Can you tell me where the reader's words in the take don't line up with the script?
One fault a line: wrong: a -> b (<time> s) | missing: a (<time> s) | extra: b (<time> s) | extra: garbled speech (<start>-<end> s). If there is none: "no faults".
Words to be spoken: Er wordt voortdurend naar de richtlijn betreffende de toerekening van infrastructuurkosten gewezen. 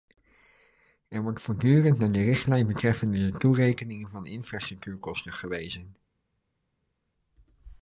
no faults